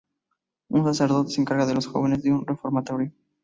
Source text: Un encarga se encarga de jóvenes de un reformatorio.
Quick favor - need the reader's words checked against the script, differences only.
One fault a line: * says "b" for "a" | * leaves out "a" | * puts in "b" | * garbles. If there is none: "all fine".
* says "sacerdote" for "encarga"
* puts in "los"